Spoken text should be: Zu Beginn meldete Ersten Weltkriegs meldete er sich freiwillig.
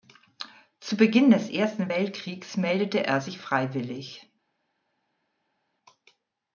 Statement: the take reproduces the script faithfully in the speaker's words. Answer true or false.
false